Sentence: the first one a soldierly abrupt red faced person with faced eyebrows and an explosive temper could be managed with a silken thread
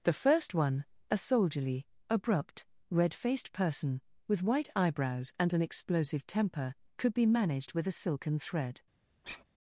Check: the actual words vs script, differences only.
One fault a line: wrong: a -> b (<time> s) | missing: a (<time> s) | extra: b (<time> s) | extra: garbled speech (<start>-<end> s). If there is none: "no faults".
wrong: faced -> white (4.4 s)